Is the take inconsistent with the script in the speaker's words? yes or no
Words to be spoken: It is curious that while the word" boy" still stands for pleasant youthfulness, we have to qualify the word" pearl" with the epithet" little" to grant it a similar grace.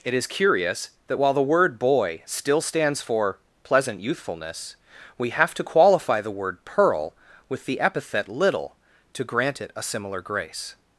no